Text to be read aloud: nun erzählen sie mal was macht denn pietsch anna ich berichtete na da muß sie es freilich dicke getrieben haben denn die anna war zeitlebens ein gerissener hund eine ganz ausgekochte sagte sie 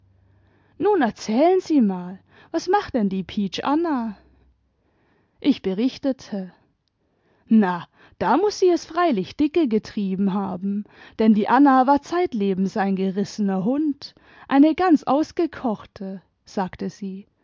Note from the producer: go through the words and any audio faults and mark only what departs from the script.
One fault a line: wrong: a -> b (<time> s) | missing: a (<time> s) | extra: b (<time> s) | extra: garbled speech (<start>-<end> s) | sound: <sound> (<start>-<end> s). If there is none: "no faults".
extra: die (3.1 s)